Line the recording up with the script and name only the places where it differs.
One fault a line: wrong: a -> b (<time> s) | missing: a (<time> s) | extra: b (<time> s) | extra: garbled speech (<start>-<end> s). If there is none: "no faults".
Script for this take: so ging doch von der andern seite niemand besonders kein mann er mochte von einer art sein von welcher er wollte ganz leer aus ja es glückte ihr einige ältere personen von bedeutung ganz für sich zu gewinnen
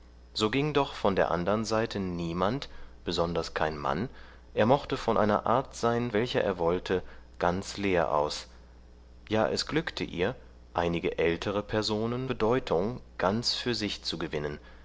missing: von (6.1 s)
missing: von (12.3 s)